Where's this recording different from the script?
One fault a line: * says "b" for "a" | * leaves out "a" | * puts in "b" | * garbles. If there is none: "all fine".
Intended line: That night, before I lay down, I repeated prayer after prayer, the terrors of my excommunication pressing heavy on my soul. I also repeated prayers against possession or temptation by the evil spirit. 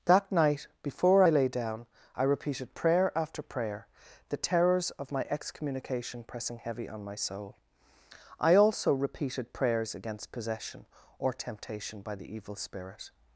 all fine